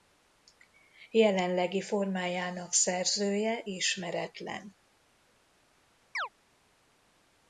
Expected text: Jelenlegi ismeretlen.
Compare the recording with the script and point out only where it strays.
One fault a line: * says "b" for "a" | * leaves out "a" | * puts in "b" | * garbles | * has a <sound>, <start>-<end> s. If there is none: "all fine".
* puts in "formájának szerzője"
* has a chirp, 6.1-6.3 s